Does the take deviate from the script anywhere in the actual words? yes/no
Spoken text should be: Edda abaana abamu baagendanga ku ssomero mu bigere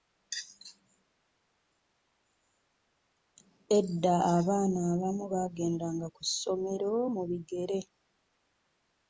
no